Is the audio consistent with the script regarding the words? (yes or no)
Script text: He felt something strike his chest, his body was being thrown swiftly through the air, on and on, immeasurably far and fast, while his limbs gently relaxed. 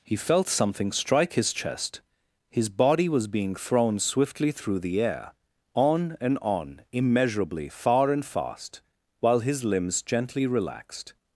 yes